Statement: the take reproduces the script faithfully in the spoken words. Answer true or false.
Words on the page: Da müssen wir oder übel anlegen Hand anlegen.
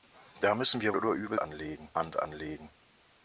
true